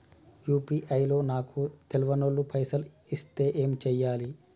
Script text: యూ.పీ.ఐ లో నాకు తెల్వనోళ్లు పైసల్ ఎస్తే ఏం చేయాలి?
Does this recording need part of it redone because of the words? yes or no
no